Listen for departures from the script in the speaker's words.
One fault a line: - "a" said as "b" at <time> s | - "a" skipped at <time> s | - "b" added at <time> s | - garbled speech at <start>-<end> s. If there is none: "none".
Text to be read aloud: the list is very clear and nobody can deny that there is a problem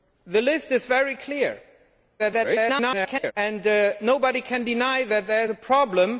- garbled speech at 2.2-3.3 s
- "is" skipped at 5.4 s